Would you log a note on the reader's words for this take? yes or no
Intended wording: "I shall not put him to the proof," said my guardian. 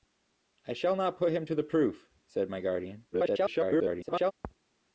yes